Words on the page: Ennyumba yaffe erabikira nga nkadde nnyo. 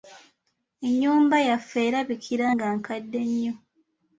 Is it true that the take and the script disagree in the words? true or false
false